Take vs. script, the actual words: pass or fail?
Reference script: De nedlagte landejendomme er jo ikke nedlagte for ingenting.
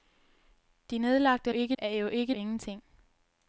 fail